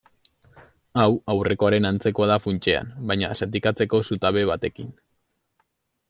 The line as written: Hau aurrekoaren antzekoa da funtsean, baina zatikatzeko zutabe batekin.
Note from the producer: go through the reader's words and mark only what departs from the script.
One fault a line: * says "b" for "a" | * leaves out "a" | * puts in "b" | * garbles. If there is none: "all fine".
all fine